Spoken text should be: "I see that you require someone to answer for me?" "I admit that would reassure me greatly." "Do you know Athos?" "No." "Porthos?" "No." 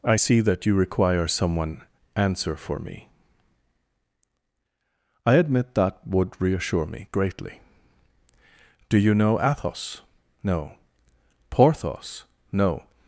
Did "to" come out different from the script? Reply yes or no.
yes